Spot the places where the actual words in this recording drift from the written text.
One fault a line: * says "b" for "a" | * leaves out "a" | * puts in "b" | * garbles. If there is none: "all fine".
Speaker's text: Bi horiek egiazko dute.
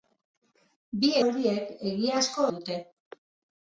all fine